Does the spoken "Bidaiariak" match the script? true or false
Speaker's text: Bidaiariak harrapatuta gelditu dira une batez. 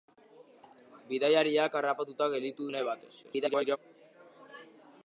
true